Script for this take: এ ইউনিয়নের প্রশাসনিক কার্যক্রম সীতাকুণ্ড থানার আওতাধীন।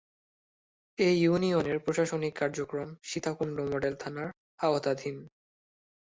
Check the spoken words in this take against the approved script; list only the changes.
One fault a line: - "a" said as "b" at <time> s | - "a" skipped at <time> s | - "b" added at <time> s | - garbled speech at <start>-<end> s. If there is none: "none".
- "মডেল" added at 3.7 s